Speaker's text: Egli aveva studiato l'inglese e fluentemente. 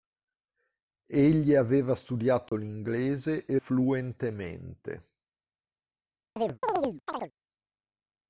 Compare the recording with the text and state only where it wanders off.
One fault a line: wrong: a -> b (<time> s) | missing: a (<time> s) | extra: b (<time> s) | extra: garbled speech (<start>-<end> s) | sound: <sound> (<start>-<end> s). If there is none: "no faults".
sound: dropout (2.5-2.5 s)
sound: chirp (6.4-7.3 s)